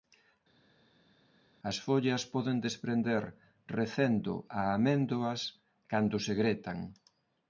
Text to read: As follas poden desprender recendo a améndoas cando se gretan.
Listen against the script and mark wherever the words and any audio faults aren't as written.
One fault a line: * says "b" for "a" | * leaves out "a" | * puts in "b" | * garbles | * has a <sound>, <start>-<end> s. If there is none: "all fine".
all fine